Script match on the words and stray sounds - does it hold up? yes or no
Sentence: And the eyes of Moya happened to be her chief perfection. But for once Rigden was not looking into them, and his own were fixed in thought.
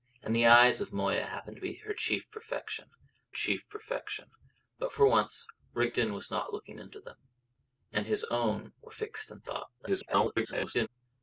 no